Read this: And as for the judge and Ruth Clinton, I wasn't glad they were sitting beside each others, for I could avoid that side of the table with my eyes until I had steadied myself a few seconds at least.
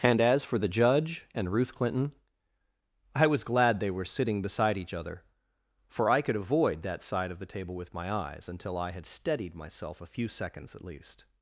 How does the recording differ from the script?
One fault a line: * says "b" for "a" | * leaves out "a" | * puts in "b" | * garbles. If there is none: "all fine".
* says "was" for "wasn't"
* says "other" for "others"